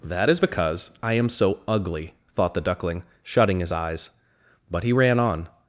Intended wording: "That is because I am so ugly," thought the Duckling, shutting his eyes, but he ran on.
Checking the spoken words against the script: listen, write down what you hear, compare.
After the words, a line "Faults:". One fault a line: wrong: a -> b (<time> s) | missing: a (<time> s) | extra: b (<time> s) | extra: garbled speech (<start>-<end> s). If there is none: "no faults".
"That is because I am so ugly," thought the Duckling, shutting his eyes, but he ran on.
Faults:
no faults